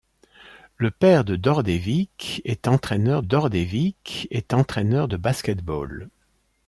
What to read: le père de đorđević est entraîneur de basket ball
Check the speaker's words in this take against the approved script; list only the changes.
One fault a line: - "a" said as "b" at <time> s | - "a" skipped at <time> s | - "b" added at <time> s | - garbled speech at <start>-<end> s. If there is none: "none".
- "đorđević est entraîneur" added at 3.2 s